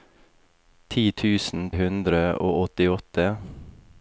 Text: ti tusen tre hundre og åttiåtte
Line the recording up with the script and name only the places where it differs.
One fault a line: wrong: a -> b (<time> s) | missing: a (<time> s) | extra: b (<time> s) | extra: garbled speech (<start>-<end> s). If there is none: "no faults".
missing: tre (1.7 s)